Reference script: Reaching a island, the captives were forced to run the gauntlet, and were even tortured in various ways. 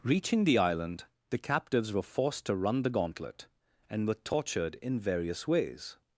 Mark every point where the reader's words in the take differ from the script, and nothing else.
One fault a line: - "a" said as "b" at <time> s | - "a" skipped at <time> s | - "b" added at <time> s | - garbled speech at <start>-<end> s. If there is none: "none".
- "a" said as "the" at 0.5 s
- "even" skipped at 4.1 s